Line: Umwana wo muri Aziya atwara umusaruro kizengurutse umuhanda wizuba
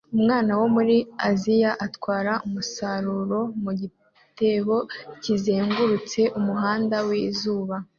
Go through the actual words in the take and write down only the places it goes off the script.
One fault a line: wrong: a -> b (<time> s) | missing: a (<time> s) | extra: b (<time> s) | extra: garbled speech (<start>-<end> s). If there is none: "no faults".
extra: mu gitebo (3.6 s)